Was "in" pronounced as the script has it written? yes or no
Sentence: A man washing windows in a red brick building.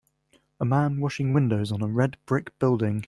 no